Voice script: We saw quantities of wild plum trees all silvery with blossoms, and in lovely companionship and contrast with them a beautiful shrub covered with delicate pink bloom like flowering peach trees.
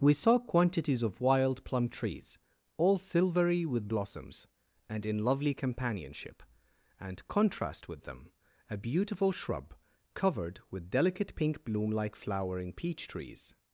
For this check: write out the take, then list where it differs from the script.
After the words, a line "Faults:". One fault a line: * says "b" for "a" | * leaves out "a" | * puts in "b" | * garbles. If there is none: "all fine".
We saw quantities of wild plum trees all silvery with blossoms, and in lovely companionship and contrast with them a beautiful shrub covered with delicate pink bloom like flowering peach trees.
Faults:
all fine